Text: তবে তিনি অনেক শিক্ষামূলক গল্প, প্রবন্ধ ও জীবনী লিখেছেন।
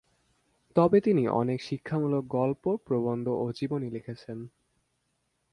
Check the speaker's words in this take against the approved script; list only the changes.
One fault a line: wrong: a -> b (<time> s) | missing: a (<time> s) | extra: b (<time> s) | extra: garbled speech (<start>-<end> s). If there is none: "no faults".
no faults